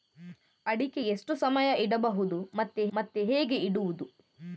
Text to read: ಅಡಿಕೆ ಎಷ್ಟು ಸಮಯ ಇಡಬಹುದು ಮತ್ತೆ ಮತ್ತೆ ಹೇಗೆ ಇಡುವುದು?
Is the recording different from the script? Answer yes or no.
no